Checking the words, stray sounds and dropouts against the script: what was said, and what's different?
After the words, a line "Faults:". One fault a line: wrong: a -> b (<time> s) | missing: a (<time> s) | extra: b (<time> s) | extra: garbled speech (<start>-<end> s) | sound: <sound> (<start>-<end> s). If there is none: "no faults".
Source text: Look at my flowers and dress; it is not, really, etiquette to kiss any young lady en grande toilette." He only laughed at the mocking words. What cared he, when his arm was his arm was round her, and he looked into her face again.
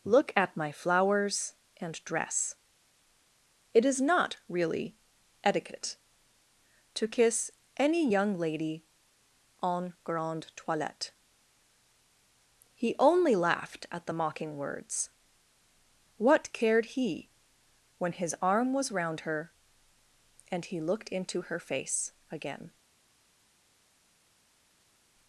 Look at my flowers and dress; it is not, really, etiquette to kiss any young lady en grande toilette." He only laughed at the mocking words. What cared he, when his arm was round her, and he looked into her face again.
Faults:
missing: his arm was (18.9 s)